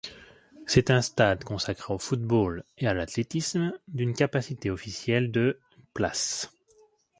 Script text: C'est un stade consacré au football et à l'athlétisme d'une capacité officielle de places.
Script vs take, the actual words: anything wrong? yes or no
no